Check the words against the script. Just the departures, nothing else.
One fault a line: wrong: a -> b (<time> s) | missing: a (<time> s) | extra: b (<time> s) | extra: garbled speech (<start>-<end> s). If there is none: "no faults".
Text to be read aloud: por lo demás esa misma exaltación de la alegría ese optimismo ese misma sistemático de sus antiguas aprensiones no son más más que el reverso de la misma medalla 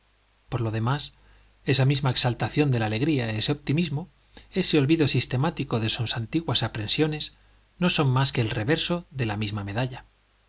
wrong: misma -> olvido (4.8 s)
missing: más (8.3 s)